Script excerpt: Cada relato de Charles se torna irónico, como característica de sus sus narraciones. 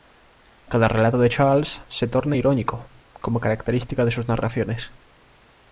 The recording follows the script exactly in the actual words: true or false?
false